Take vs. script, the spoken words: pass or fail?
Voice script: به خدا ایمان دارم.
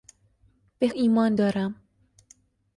fail